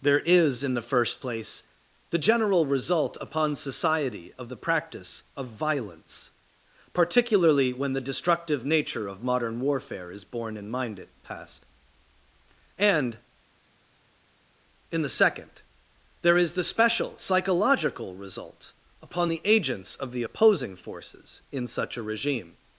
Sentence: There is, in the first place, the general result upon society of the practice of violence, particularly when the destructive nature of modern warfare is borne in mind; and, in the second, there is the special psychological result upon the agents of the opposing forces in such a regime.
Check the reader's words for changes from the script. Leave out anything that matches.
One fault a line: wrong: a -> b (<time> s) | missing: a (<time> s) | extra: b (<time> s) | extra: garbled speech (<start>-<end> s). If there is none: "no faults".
extra: it past (11.0 s)